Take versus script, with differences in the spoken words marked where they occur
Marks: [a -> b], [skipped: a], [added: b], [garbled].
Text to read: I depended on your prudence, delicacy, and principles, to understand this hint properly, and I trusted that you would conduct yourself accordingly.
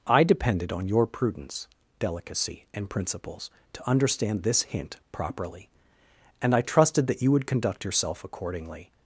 I depended on your prudence, delicacy, and principles, to understand this hint properly, and I trusted that you would conduct yourself accordingly.